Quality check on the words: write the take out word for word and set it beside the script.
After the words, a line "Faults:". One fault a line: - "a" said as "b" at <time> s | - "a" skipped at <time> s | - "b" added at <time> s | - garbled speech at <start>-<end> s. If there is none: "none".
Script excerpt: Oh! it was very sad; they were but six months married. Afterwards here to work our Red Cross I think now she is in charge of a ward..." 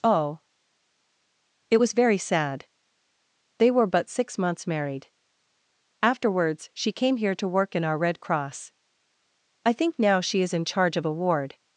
Oh! it was very sad; they were but six months married. Afterwards she came here to work in our Red Cross I think now she is in charge of a ward..."
Faults:
- "she came" added at 6.7 s
- "in" added at 7.7 s